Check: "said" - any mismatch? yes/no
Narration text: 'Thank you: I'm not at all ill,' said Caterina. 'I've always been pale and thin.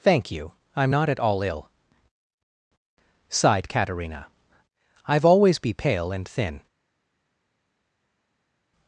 yes